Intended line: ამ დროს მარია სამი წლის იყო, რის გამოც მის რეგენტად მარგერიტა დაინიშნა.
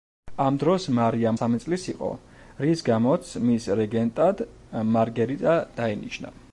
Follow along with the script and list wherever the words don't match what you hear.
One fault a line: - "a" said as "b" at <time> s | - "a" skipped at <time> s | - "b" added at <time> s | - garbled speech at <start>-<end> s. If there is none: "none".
none